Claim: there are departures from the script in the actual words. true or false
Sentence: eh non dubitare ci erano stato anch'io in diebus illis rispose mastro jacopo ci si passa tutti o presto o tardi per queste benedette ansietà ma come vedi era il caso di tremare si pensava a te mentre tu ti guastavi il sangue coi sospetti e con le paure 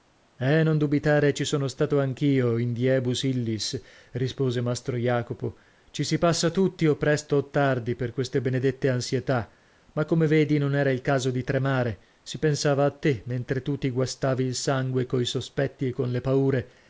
true